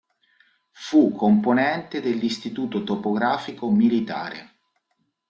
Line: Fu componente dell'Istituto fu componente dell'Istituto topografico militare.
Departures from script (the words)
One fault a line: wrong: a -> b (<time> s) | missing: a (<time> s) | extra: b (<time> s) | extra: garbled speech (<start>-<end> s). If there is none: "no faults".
missing: fu componente dell'Istituto (2.8 s)